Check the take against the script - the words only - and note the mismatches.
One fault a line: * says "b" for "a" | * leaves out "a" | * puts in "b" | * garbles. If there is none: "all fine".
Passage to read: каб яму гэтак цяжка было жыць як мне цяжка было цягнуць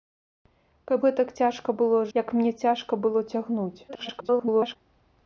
* leaves out "яму"
* leaves out "жыць"
* garbles